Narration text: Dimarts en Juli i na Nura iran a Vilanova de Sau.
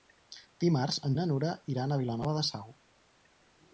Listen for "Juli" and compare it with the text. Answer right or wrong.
wrong